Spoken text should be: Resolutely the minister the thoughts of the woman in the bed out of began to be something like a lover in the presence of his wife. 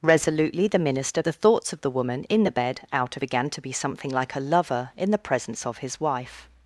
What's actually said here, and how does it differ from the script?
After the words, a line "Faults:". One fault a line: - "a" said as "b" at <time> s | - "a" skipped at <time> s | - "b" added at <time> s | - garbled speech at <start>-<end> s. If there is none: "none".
Resolutely the minister the thoughts of the woman in the bed out of began to be something like a lover in the presence of his wife.
Faults:
none